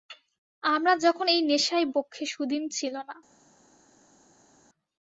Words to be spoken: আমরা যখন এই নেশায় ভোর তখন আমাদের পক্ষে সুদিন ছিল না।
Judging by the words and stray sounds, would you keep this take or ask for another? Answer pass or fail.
fail